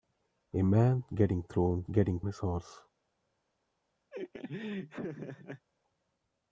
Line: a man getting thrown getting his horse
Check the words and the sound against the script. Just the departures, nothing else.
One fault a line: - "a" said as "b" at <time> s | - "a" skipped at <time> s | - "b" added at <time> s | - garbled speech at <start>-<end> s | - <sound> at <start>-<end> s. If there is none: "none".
- laugh at 4.1-5.7 s